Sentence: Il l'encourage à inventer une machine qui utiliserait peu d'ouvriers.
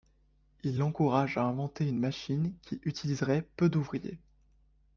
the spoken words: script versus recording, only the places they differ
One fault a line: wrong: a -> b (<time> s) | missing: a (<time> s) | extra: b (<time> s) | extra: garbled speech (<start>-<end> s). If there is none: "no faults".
no faults